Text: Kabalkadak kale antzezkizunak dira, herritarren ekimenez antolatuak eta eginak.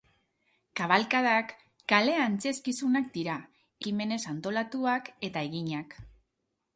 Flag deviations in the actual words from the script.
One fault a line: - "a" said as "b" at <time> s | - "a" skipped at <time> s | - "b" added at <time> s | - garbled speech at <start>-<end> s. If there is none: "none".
- "herritarren" skipped at 3.4 s